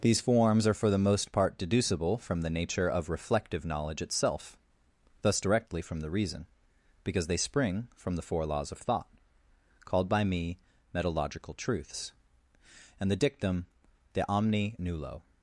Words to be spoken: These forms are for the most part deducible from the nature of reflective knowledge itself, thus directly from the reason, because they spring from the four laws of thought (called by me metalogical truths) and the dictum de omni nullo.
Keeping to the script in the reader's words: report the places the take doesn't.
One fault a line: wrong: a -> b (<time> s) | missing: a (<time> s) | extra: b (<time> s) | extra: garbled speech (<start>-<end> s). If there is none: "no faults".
no faults